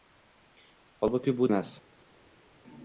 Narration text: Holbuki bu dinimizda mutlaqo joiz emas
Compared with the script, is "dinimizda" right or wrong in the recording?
wrong